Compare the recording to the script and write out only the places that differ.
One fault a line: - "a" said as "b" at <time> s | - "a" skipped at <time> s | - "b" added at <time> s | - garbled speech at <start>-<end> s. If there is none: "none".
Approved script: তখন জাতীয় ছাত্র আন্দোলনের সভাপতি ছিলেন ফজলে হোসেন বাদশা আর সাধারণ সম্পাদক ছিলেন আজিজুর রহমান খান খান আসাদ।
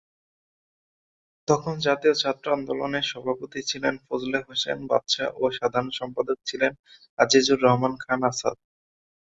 - "আর" said as "ও" at 5.4 s
- "খান" skipped at 8.2 s